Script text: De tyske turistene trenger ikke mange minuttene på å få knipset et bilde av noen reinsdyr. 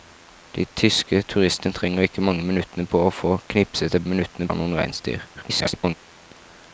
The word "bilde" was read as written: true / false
false